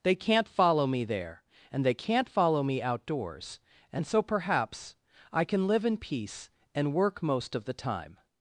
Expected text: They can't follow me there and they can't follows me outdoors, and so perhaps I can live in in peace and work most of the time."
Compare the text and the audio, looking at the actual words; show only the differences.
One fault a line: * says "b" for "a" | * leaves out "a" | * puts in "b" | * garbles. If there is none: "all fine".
* says "follow" for "follows"
* leaves out "in"